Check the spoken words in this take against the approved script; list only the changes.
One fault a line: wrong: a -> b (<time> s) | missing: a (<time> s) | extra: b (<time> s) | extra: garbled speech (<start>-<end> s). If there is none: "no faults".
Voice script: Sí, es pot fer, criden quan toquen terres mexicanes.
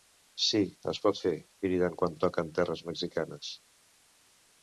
no faults